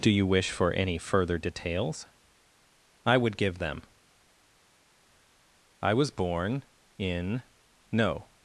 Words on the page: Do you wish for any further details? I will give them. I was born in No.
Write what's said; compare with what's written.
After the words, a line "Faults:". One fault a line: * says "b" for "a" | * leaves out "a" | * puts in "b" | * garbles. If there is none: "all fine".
Do you wish for any further details? I would give them. I was born in No.
Faults:
* says "would" for "will"